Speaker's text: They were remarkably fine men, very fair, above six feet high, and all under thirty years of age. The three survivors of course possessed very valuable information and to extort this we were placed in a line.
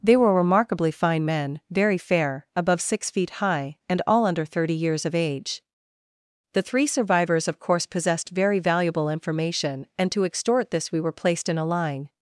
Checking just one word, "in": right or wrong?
right